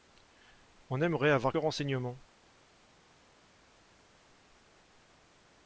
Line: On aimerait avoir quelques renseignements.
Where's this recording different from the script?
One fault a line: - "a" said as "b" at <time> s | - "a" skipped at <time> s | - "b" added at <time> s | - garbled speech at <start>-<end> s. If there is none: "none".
- "quelques" skipped at 1.5 s